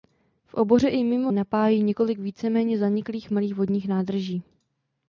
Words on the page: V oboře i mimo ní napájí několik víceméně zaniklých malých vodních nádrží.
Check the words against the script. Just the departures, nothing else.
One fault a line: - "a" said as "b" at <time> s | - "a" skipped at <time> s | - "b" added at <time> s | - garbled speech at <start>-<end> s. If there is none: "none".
- "ní" skipped at 1.3 s